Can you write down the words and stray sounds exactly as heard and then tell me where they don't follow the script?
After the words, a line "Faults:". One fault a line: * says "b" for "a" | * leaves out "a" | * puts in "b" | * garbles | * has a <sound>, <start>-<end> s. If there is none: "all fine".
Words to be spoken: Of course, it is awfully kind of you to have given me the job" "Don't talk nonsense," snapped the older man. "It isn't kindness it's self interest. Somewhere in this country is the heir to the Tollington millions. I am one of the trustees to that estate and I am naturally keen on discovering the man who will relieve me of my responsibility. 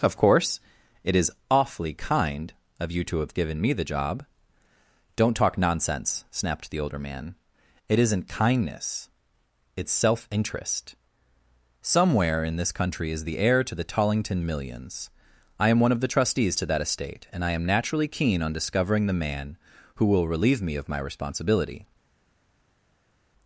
Of course, it is awfully kind of you to have given me the job" "Don't talk nonsense," snapped the older man. "It isn't kindness it's self interest. Somewhere in this country is the heir to the Tollington millions. I am one of the trustees to that estate and I am naturally keen on discovering the man who will relieve me of my responsibility.
Faults:
all fine